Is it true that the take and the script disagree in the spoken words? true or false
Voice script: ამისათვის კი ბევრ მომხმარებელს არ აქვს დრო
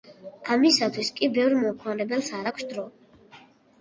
false